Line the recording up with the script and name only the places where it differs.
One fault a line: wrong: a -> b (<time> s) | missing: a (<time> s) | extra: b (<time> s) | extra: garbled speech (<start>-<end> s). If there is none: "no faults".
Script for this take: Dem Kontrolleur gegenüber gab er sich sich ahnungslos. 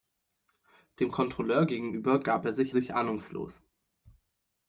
no faults